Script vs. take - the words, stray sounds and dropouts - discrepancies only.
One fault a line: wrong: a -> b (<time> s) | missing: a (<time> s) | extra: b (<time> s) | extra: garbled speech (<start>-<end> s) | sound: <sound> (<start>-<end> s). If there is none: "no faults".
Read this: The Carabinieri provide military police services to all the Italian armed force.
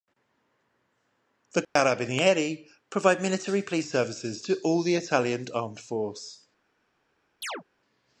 sound: dropout (1.6-1.8 s)
sound: chirp (7.4-7.6 s)